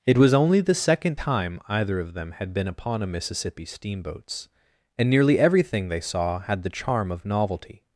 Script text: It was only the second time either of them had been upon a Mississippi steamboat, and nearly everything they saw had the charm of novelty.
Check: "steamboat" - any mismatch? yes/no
yes